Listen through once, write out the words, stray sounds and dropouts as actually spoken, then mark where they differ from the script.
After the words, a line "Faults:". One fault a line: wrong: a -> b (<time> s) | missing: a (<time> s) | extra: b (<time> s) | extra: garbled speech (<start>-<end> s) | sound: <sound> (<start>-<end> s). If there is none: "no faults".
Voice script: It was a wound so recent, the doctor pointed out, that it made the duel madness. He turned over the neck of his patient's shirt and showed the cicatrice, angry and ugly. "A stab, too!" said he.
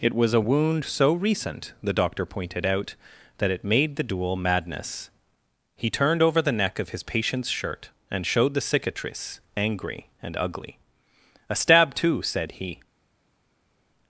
It was a wound so recent, the doctor pointed out, that it made the duel madness. He turned over the neck of his patient's shirt and showed the cicatrice, angry and ugly. "A stab, too!" said he.
Faults:
no faults